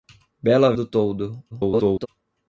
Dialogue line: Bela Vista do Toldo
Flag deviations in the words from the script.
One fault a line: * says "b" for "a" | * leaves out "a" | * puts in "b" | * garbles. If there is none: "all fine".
* leaves out "Vista"
* garbles